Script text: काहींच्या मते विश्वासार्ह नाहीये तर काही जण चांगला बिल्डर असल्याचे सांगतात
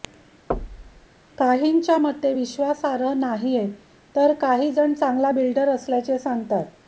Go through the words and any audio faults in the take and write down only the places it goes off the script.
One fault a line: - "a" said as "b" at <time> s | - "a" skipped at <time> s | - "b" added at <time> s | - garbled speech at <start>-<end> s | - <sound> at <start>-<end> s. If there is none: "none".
- thud at 0.5-1.1 s